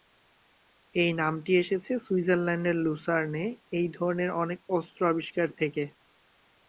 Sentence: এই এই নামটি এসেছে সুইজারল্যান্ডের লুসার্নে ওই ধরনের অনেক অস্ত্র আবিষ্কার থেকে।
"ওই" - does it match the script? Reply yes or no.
no